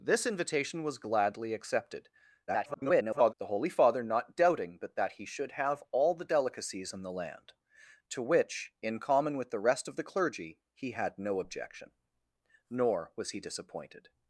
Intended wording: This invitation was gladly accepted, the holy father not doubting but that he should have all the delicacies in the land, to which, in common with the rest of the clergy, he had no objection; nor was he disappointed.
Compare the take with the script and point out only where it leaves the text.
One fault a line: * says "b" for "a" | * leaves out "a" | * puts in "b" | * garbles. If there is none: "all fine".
* garbles